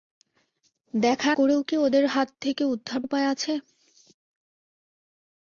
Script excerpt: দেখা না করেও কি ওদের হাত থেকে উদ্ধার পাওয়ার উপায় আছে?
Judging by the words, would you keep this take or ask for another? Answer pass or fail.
fail